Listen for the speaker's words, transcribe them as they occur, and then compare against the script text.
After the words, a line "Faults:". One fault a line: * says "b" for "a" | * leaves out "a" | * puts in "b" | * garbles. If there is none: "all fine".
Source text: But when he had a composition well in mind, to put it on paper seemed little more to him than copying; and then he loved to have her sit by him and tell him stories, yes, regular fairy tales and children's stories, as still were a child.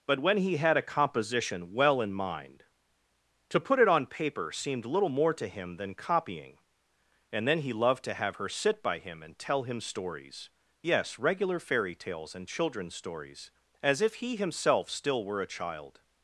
But when he had a composition well in mind, to put it on paper seemed little more to him than copying; and then he loved to have her sit by him and tell him stories, yes, regular fairy tales and children's stories, as if he himself still were a child.
Faults:
* puts in "if he himself"